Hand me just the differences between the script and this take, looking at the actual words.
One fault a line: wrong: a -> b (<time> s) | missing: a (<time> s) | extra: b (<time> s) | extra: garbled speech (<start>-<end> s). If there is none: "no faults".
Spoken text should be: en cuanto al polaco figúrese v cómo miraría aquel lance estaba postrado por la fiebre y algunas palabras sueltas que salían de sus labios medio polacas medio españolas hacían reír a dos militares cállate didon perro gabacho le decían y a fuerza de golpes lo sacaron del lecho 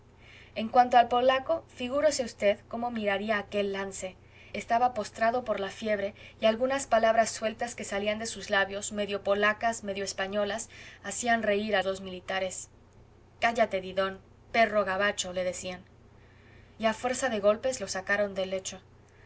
no faults